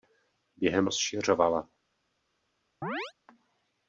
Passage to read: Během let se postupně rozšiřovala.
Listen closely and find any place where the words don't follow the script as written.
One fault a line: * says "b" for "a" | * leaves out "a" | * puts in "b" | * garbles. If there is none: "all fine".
* leaves out "let se postupně"